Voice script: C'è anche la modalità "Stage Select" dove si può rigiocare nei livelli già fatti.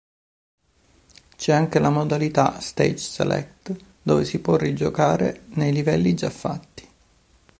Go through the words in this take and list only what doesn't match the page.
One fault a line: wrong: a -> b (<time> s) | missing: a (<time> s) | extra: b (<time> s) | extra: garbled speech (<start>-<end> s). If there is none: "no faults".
no faults